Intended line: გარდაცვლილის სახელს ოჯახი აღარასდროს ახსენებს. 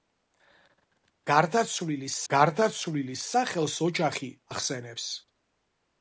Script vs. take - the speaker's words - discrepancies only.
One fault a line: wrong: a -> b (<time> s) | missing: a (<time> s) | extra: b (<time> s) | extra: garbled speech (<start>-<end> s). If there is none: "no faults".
extra: გარდაცვლილის (2.3 s)
missing: აღარასდროს (4.3 s)